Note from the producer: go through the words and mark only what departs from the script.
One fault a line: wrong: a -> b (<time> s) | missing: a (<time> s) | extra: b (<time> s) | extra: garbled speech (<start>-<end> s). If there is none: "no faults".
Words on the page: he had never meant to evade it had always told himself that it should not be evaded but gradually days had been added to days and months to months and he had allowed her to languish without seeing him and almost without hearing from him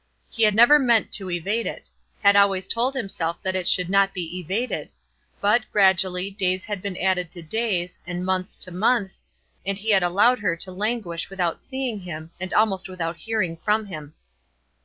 no faults